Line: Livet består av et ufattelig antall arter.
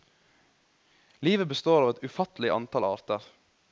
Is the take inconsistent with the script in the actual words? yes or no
no